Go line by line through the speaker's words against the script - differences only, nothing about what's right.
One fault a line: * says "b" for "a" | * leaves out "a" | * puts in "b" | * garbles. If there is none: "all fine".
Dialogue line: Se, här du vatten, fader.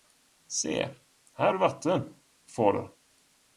all fine